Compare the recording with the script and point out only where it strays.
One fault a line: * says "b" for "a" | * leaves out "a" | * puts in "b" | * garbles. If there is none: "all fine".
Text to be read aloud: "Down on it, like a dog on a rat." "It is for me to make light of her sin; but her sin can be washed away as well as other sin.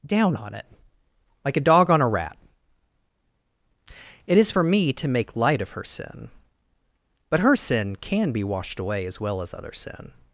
all fine